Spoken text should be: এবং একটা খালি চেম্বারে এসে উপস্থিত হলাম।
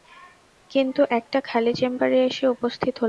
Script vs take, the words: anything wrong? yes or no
yes